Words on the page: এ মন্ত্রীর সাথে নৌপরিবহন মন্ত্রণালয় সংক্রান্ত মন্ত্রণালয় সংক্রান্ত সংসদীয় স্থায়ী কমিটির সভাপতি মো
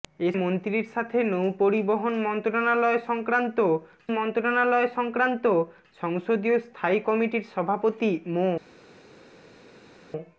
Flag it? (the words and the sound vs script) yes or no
no